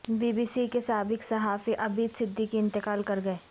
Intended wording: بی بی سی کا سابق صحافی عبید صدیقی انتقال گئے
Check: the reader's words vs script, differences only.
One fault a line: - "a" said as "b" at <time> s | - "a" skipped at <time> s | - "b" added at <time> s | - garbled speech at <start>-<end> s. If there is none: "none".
- "کا" said as "کے" at 0.7 s
- "کر" added at 3.0 s